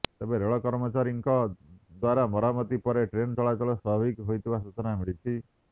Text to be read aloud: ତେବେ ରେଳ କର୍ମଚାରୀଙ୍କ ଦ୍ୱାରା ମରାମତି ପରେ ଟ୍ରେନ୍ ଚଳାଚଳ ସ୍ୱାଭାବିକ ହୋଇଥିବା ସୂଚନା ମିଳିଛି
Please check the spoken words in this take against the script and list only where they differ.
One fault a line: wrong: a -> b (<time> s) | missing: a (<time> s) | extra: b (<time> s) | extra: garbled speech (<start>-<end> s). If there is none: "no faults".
no faults